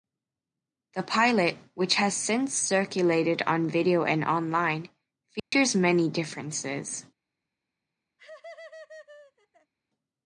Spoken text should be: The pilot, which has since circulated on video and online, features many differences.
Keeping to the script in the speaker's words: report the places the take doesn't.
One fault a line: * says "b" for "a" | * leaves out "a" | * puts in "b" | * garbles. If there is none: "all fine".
all fine